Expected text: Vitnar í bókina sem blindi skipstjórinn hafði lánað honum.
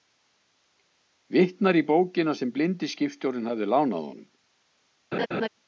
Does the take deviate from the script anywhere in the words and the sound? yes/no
yes